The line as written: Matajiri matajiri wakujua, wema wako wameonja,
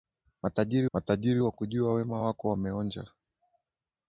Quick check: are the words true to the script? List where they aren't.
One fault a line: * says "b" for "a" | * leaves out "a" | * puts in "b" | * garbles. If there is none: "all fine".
all fine